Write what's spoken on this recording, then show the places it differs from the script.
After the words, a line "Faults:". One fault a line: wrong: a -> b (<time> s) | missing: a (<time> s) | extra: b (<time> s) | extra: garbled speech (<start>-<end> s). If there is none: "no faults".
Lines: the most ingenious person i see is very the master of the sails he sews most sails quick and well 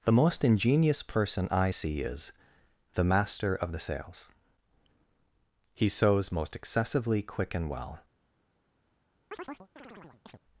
the most ingenious person i see is the master of the sails he sews most excessively quick and well
Faults:
missing: very (2.3 s)
wrong: sails -> excessively (6.5 s)